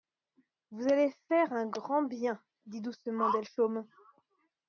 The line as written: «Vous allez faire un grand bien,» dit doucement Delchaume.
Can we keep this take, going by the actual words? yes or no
yes